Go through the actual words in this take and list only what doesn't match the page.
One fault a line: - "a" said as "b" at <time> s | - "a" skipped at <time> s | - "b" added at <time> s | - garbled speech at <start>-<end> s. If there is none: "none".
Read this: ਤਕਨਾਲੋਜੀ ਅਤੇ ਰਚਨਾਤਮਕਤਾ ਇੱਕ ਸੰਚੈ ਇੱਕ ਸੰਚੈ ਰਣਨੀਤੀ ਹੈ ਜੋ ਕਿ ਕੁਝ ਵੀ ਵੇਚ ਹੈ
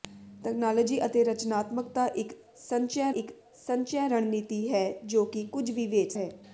none